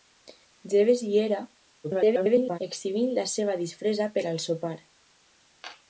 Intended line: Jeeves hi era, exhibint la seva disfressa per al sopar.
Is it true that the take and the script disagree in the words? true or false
true